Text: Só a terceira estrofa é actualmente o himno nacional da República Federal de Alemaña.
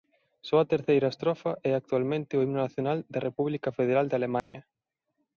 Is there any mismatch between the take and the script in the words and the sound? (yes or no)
yes